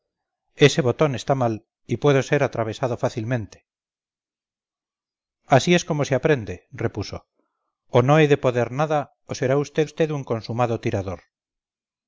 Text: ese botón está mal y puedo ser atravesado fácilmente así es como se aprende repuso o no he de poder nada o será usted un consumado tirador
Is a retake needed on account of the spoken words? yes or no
yes